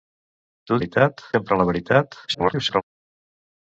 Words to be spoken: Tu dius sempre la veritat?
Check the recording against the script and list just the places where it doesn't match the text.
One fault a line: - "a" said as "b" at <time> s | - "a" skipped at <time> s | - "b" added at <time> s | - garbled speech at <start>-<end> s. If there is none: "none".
- "dius" said as "veritat" at 0.8 s
- garbled speech at 2.3-2.8 s